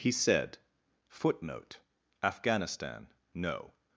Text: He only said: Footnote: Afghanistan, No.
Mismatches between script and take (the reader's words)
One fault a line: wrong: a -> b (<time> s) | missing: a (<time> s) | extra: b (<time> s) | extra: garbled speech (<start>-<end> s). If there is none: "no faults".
missing: only (0.1 s)